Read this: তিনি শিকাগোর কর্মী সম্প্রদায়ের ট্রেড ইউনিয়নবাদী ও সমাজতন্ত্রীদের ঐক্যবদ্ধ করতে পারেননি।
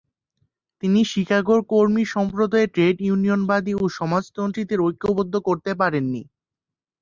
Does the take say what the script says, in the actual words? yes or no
yes